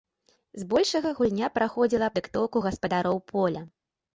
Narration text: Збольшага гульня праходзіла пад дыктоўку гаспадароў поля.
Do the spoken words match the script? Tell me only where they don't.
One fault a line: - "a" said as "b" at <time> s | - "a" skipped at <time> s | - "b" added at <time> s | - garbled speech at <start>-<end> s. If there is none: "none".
- "пад" skipped at 2.1 s